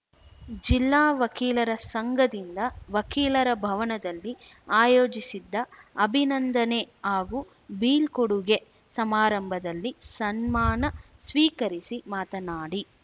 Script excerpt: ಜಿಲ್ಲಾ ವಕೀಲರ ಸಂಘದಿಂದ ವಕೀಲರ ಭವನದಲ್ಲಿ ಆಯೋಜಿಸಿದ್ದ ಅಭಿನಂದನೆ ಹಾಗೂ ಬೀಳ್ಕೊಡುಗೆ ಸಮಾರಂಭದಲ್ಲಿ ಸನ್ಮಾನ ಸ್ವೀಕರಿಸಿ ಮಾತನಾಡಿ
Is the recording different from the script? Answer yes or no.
no